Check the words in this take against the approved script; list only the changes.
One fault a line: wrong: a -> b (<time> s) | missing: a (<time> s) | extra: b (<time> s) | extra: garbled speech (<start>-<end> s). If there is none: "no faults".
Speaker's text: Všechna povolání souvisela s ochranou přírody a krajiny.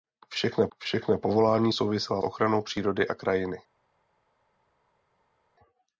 extra: všechna (0.8 s)
missing: s (2.2 s)